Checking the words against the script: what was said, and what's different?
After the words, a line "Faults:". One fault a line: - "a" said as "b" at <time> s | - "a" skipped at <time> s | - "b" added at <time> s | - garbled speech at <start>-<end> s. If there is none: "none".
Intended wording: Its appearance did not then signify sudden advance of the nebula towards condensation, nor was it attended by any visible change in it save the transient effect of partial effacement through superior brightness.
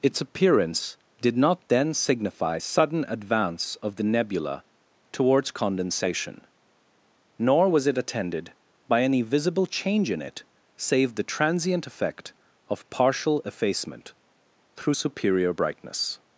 Its appearance did not then signify sudden advance of the nebula towards condensation, nor was it attended by any visible change in it save the transient effect of partial effacement through superior brightness.
Faults:
none